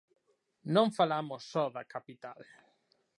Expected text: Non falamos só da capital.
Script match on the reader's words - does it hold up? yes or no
yes